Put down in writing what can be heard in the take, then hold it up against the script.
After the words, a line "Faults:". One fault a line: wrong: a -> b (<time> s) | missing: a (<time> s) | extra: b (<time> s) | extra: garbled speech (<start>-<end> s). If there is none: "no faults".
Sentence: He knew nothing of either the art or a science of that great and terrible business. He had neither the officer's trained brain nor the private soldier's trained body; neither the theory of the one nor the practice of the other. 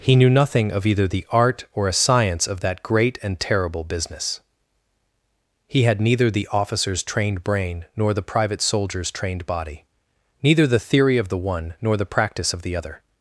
He knew nothing of either the art or a science of that great and terrible business. He had neither the officer's trained brain nor the private soldier's trained body; neither the theory of the one nor the practice of the other.
Faults:
no faults